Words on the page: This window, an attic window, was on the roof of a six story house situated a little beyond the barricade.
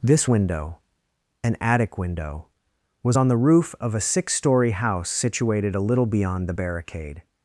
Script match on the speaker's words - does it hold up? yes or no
yes